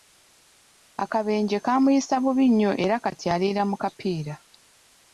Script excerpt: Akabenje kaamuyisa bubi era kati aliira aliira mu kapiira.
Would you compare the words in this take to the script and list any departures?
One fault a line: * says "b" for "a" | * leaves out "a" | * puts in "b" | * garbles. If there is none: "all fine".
* puts in "nnyo"
* leaves out "aliira"